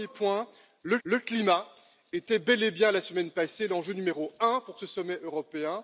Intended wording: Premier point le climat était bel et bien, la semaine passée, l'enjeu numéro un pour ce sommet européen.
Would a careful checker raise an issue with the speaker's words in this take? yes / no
yes